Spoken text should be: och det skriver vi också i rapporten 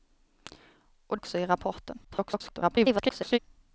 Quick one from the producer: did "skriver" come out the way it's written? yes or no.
no